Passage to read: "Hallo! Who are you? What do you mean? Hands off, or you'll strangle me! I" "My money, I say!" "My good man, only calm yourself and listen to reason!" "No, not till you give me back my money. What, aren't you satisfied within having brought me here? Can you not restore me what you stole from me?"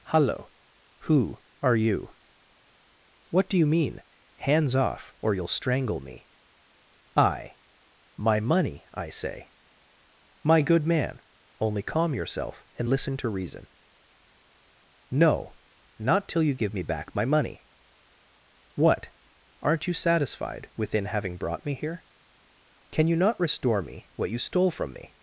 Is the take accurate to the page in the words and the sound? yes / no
yes